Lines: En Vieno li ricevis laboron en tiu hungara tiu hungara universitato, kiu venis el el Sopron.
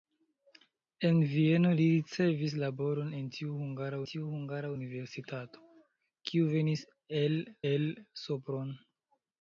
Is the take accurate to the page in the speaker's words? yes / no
yes